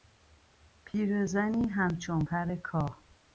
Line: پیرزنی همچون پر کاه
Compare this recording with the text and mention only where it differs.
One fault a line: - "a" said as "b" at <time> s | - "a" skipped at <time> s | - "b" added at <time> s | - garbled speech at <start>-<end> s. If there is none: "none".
none